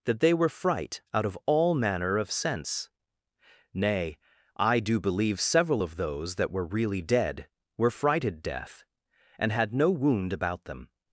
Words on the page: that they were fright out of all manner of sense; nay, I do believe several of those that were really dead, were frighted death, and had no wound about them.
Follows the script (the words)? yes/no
yes